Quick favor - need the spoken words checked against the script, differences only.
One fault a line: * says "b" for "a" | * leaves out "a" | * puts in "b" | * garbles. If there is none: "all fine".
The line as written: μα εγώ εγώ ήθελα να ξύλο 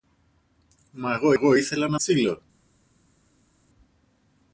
all fine